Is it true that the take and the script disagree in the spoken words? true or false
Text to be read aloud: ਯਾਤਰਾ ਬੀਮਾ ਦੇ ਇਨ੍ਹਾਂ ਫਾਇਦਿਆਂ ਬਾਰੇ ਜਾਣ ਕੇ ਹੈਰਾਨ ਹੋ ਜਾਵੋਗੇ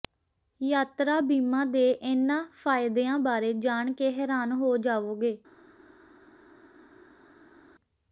false